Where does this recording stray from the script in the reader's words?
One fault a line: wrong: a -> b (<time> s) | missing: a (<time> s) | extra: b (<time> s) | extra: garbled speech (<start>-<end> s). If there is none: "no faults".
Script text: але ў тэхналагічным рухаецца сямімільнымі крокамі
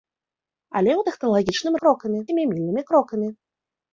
wrong: рухаецца -> крокамі (1.8 s)